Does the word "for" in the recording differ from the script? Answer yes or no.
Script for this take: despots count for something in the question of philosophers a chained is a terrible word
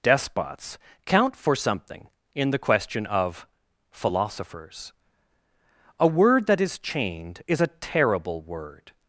no